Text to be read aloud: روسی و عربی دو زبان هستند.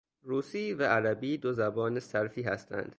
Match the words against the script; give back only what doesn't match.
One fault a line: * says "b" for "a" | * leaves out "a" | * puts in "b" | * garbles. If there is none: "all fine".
* puts in "صرفی"